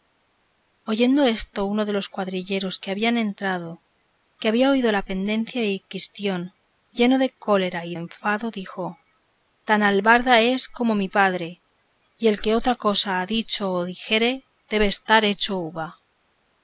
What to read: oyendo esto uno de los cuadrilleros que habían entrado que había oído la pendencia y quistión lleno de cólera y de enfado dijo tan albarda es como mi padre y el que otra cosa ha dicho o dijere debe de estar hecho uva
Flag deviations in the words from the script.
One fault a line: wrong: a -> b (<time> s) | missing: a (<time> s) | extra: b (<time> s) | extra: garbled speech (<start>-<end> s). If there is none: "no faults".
missing: de (8.0 s)